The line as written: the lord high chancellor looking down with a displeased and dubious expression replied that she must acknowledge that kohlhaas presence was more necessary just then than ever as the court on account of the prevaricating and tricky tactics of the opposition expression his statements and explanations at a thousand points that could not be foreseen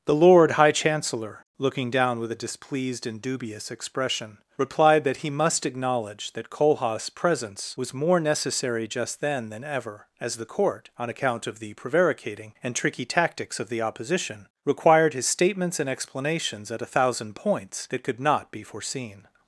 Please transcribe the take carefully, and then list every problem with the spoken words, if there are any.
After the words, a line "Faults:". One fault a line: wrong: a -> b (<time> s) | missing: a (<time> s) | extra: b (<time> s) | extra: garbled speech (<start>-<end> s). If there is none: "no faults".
the lord high chancellor looking down with a displeased and dubious expression replied that he must acknowledge that kohlhaas presence was more necessary just then than ever as the court on account of the prevaricating and tricky tactics of the opposition required his statements and explanations at a thousand points that could not be foreseen
Faults:
wrong: she -> he (5.2 s)
wrong: expression -> required (14.6 s)